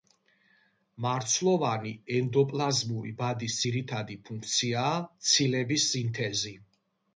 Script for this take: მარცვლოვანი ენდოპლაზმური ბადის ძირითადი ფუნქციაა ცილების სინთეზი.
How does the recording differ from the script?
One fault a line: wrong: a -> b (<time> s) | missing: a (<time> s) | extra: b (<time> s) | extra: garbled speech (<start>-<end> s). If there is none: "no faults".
no faults